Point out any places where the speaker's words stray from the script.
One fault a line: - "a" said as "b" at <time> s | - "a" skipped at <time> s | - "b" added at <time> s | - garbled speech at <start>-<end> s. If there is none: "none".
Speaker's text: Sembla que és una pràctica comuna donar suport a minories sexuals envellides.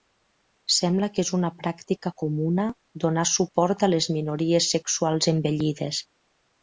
- "les" added at 4.0 s